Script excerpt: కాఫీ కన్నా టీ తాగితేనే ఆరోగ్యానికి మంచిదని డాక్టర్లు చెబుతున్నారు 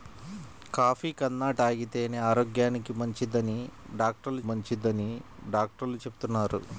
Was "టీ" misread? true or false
true